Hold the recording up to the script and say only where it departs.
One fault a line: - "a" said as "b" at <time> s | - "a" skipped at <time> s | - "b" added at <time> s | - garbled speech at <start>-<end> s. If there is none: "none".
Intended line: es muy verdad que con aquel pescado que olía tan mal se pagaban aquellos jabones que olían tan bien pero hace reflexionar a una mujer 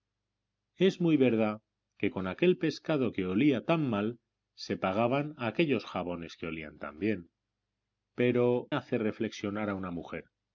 none